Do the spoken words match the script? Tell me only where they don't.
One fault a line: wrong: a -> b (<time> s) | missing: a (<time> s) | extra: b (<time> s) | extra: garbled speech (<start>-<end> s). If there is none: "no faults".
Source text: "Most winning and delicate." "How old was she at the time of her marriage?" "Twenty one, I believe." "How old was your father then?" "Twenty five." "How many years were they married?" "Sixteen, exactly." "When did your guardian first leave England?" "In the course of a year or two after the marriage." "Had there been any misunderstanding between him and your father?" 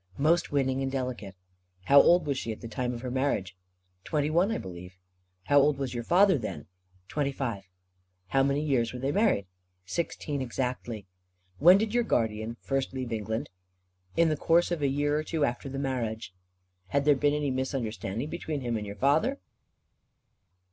no faults